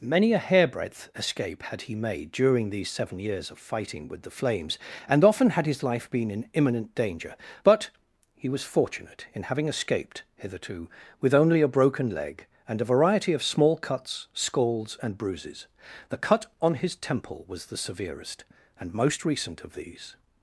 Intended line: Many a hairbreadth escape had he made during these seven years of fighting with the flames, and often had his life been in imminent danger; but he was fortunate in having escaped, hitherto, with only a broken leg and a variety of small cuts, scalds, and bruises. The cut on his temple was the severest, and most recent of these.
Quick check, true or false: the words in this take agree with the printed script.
true